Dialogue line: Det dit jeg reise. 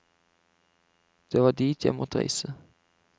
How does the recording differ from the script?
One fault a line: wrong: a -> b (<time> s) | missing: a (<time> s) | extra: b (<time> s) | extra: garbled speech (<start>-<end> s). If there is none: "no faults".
extra: var (1.4 s)
extra: måtte (1.9 s)